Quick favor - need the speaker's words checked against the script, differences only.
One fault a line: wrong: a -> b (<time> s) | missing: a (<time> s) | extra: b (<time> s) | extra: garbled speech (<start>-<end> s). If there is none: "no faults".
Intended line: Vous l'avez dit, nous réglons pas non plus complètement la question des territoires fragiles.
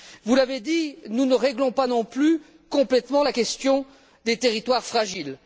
extra: ne (1.2 s)